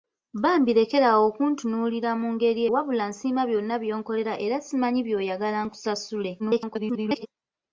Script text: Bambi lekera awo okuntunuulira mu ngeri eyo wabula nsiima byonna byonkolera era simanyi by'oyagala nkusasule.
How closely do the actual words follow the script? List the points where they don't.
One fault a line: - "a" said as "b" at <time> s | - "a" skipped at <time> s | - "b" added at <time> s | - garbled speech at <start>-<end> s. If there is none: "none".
- "eyo" skipped at 2.6 s
- garbled speech at 6.4-7.3 s